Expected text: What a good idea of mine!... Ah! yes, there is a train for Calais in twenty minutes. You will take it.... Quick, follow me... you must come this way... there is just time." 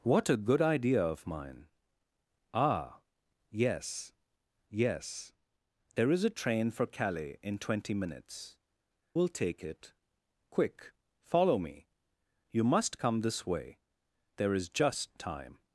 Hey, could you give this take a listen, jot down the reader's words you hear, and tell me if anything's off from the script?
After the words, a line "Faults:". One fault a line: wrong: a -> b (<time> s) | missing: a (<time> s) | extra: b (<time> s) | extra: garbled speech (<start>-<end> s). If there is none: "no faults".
What a good idea of mine!... Ah! yes yes, there is a train for Calais in twenty minutes. Will take it.... Quick, follow me... you must come this way... there is just time."
Faults:
extra: yes (4.7 s)
missing: You (8.6 s)